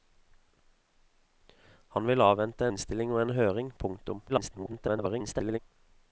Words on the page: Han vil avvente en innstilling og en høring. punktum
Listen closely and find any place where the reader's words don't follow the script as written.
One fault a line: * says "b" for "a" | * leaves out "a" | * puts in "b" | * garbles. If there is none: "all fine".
* leaves out "en"
* garbles